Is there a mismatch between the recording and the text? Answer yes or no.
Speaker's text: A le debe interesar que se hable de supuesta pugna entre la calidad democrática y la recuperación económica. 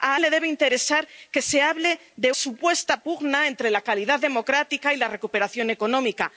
no